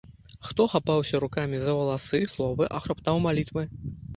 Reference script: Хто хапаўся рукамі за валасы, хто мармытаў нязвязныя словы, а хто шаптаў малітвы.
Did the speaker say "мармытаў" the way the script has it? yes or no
no